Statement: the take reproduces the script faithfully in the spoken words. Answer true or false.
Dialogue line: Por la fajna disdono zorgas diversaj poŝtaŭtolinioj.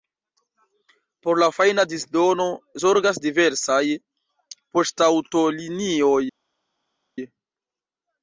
true